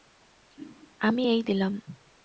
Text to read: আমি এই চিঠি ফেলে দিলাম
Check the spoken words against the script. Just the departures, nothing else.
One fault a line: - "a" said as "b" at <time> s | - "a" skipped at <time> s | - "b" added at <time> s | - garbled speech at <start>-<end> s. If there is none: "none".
- "চিঠি ফেলে" skipped at 1.4 s